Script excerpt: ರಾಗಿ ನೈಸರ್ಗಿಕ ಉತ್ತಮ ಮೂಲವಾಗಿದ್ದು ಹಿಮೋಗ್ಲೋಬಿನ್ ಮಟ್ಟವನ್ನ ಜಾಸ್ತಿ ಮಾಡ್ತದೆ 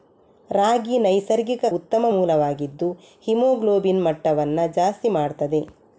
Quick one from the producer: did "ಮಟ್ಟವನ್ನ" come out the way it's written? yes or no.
yes